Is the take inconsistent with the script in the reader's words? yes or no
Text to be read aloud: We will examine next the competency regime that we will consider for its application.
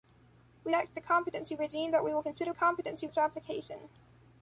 yes